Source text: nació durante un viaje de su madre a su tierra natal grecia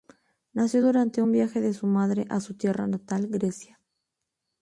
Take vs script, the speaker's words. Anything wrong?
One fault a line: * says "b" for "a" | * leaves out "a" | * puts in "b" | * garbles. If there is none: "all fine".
all fine